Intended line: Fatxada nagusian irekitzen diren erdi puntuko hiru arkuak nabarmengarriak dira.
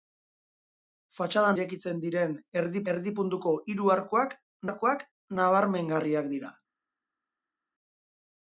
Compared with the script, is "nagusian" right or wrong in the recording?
wrong